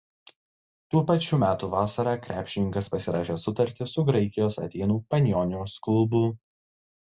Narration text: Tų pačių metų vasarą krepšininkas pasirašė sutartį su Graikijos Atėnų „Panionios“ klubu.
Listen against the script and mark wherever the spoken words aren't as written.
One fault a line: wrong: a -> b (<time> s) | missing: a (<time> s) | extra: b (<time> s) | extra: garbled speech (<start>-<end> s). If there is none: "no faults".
no faults